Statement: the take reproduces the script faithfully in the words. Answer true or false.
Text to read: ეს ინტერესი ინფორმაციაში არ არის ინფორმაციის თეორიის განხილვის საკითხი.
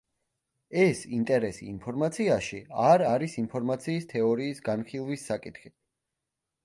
true